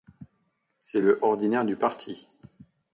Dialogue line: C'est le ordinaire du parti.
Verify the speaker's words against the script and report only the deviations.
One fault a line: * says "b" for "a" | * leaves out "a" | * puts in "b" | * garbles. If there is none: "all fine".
all fine